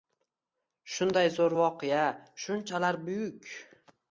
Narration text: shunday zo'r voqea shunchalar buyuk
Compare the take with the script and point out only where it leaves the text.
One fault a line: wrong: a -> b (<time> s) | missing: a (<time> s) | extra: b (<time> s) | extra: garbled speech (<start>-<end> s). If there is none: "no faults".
no faults